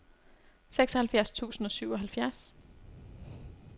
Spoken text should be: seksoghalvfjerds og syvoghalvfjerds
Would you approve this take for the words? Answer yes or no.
no